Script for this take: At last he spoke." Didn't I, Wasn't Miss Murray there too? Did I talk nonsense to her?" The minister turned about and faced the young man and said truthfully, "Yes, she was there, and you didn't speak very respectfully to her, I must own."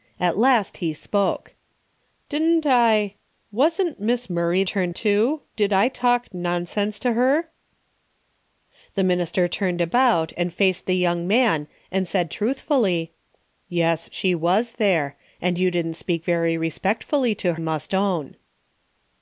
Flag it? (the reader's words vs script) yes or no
yes